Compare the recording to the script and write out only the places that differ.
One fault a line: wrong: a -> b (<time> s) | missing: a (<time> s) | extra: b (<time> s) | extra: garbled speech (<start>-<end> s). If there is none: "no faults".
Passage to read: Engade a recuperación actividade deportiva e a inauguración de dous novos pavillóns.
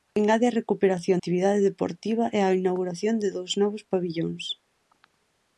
no faults